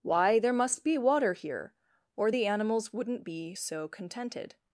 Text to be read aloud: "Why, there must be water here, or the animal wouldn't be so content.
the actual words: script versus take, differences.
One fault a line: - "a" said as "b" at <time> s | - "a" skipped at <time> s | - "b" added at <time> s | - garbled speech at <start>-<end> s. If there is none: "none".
- "animal" said as "animals" at 2.4 s
- "content" said as "contented" at 3.9 s